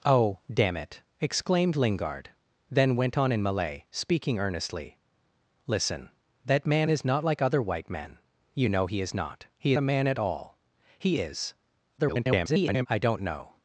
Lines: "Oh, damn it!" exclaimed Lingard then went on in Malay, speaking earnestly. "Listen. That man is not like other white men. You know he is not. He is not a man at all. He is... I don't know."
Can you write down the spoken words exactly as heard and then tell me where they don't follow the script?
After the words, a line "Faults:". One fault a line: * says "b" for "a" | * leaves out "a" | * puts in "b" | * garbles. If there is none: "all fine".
"Oh, damn it!" exclaimed Lingard then went on in Malay, speaking earnestly. "Listen. That man is not like other white men. You know he is not. He a man at all. He is... [garbled] I don't know."
Faults:
* leaves out "is not"
* garbles